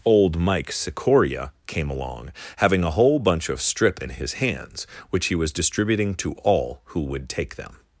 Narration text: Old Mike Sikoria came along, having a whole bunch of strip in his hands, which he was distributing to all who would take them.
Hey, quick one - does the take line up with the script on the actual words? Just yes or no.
yes